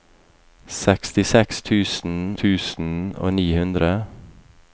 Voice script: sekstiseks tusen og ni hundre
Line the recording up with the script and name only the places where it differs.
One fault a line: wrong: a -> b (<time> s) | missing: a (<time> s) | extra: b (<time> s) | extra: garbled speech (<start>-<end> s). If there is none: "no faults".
extra: tusen (2.4 s)